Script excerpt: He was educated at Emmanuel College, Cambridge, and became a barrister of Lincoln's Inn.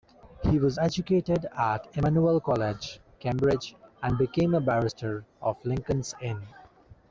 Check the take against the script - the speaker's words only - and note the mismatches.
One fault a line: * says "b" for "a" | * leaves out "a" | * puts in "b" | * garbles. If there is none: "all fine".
all fine